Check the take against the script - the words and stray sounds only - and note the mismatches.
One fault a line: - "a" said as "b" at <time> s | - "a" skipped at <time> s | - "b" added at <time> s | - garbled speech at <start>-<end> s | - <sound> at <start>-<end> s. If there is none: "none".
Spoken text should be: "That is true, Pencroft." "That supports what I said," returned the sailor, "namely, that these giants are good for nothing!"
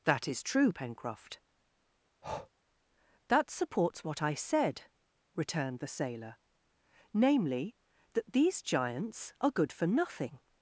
- breath at 2.2-2.5 s